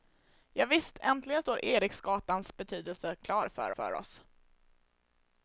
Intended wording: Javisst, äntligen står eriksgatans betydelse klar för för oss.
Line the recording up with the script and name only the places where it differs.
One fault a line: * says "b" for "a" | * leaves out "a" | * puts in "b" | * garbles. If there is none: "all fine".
all fine